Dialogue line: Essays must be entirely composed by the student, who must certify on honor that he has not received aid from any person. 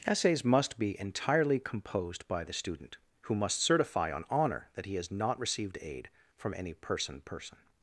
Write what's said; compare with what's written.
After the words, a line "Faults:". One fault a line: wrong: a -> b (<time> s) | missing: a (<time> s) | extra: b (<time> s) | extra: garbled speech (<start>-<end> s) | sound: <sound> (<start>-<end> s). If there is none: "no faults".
Essays must be entirely composed by the student, who must certify on honor that he has not received aid from any person person.
Faults:
extra: person (7.2 s)